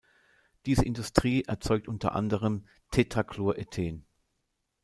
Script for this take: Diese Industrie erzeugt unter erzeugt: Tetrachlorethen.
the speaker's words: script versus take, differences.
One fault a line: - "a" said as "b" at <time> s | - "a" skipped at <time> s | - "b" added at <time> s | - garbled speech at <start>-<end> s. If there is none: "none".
- "erzeugt" said as "anderem" at 2.1 s